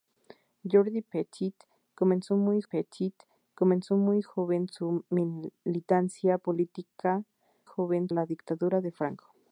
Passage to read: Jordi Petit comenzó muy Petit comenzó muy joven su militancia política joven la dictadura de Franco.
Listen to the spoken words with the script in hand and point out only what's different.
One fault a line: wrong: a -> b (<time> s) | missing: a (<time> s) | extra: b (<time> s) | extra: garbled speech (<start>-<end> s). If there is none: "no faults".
no faults